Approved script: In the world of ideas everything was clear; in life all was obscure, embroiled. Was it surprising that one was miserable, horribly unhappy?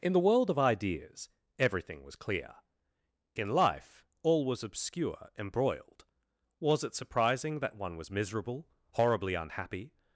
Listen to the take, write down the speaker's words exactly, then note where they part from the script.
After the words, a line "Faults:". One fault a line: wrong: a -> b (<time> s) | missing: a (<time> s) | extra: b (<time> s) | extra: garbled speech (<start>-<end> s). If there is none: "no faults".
In the world of ideas everything was clear; in life all was obscure, embroiled. Was it surprising that one was miserable, horribly unhappy?
Faults:
no faults